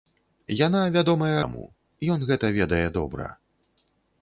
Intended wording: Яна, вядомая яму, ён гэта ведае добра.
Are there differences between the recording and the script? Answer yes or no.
no